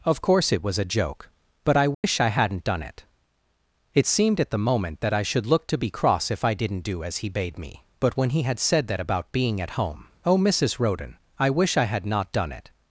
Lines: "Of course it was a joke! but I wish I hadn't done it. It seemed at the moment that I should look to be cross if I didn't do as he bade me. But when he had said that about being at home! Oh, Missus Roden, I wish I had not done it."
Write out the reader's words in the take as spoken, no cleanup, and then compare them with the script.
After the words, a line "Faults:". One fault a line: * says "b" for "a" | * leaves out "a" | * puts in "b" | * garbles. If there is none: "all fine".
"Of course it was a joke! but I wish I hadn't done it. It seemed at the moment that I should look to be cross if I didn't do as he bade me. But when he had said that about being at home! Oh, Missus Roden, I wish I had not done it."
Faults:
all fine